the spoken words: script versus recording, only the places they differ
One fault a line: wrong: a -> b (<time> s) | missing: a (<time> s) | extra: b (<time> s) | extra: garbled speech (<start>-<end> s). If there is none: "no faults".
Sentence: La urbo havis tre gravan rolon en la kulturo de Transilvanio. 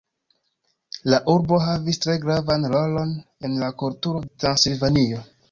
missing: de (4.3 s)